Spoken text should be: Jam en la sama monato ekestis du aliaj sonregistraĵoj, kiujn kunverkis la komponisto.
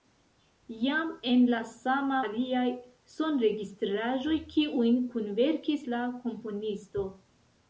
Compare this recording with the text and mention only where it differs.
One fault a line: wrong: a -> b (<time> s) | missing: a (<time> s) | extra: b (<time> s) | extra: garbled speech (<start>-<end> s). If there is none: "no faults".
missing: monato ekestis du (2.2 s)